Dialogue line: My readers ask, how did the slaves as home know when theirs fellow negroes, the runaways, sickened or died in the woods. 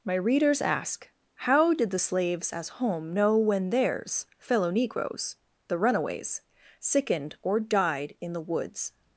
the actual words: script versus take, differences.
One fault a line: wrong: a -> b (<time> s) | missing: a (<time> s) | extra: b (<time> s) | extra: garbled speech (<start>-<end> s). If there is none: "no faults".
no faults